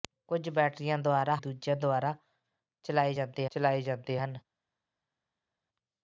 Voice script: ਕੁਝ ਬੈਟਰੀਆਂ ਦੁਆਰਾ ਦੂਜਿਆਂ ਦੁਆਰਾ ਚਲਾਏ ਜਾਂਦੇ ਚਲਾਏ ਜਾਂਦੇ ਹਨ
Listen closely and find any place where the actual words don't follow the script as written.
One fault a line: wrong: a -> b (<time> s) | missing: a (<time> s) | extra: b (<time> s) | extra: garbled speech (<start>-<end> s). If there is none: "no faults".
no faults